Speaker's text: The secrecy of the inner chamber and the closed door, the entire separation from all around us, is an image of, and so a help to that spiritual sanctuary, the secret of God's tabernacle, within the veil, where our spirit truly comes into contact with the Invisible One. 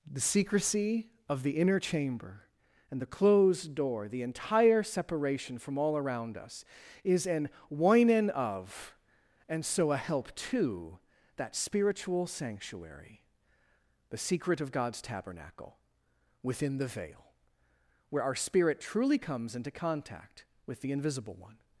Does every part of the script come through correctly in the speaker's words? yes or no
no